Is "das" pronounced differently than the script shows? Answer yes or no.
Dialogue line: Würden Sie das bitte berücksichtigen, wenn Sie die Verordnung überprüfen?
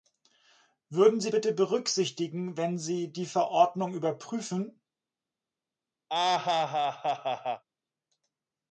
yes